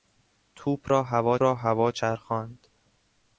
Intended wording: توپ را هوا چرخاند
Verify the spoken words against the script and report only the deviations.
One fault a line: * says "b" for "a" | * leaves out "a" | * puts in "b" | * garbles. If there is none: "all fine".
* puts in "را هوا"